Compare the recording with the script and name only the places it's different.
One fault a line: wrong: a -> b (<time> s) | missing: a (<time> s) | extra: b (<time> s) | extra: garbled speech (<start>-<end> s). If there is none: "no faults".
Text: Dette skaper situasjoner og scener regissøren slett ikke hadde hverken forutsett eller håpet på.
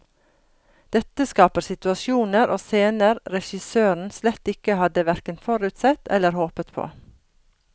no faults